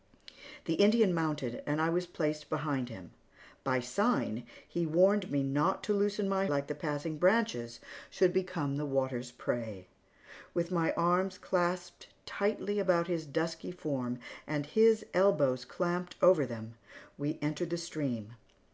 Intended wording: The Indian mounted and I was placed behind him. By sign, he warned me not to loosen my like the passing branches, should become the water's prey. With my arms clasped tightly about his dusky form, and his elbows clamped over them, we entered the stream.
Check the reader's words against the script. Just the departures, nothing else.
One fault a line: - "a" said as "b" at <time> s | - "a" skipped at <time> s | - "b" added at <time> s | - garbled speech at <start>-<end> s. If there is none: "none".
none